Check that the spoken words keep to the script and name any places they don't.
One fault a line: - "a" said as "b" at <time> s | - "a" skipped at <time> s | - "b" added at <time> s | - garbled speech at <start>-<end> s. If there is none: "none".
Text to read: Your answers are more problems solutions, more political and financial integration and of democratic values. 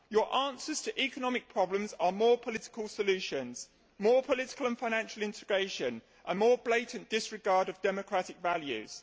- "to economic problems" added at 0.8 s
- "problems" said as "political" at 2.4 s
- "more blatant disregard" added at 6.4 s